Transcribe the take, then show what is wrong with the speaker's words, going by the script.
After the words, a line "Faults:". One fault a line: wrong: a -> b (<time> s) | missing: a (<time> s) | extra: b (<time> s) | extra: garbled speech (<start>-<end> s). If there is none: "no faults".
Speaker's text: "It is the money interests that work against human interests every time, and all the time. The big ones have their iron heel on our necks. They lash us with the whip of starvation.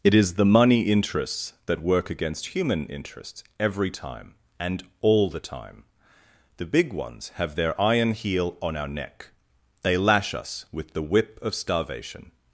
"It is the money interests that work against human interests every time, and all the time. The big ones have their iron heel on our neck. They lash us with the whip of starvation.
Faults:
wrong: necks -> neck (8.9 s)